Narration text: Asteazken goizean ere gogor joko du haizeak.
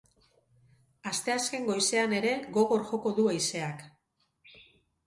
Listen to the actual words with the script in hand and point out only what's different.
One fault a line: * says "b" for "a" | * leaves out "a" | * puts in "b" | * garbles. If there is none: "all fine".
all fine